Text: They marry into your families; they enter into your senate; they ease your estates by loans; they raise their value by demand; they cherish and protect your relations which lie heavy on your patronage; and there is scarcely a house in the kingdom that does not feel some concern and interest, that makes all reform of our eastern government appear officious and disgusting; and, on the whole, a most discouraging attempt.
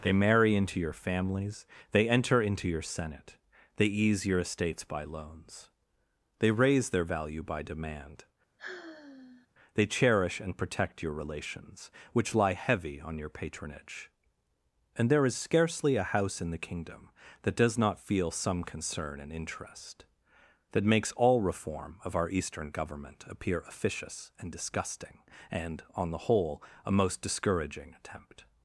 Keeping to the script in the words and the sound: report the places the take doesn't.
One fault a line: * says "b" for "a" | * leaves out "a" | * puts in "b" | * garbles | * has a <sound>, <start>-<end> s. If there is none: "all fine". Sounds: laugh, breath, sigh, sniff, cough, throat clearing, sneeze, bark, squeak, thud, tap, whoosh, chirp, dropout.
* has a sigh, 8.6-9.5 s